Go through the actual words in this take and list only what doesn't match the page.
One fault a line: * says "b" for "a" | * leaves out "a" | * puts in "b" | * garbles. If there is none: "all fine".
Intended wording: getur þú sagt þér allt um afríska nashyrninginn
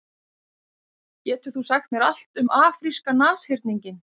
* says "mér" for "þér"